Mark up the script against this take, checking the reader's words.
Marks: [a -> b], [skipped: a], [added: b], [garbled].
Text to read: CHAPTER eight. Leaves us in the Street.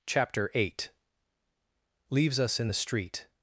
CHAPTER eight. Leaves us in the Street.